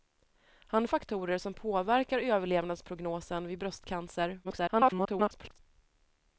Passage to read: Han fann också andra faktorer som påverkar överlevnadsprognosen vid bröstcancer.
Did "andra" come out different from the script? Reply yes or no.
yes